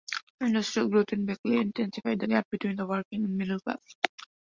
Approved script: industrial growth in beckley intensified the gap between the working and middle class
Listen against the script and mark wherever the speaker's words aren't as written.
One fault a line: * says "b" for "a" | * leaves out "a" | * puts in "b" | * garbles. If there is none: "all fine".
all fine